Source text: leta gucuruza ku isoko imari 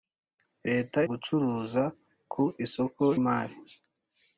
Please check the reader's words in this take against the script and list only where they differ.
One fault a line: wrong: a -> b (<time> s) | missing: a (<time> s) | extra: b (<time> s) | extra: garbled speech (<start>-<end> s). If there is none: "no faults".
no faults